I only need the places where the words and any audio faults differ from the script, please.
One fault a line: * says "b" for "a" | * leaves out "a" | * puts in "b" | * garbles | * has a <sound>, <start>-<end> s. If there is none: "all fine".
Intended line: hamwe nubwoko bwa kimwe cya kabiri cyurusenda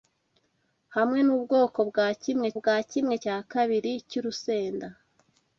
* puts in "bwa kimwe"